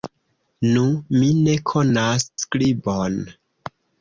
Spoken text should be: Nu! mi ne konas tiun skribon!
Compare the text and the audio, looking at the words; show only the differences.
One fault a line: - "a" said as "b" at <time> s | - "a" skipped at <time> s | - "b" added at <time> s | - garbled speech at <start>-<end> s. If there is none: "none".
- "tiun" skipped at 2.3 s